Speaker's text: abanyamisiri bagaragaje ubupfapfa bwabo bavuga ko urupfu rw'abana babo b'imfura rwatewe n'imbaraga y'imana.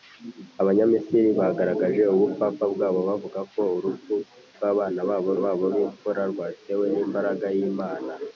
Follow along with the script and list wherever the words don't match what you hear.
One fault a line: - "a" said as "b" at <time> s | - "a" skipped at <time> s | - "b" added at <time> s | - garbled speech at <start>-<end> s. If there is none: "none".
- "babo" added at 5.4 s